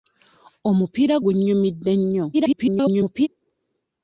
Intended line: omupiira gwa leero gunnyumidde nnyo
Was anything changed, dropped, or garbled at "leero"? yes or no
yes